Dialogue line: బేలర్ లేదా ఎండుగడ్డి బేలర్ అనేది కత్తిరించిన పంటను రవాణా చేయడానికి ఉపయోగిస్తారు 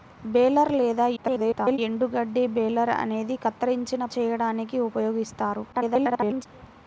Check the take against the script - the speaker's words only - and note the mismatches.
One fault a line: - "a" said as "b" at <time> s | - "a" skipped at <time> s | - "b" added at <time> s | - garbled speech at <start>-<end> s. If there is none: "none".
- garbled speech at 1.2-1.8 s
- "పంటను రవాణా" skipped at 4.0 s
- garbled speech at 5.7-6.5 s